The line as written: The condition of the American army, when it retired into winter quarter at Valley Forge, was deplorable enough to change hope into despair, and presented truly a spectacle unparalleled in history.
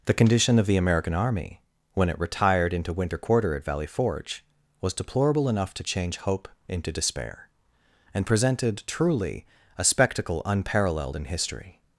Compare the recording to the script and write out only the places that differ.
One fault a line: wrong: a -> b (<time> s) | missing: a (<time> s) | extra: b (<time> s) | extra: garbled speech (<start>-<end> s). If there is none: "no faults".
no faults